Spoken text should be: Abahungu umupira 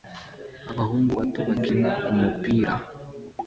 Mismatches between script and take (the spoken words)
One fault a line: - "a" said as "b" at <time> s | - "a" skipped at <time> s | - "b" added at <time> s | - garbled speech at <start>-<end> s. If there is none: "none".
- "bato bakina" added at 1.2 s